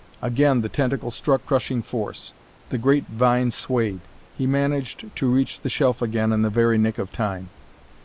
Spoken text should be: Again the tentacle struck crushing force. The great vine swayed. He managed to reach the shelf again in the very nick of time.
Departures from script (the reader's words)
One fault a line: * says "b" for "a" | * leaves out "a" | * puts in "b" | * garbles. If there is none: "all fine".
all fine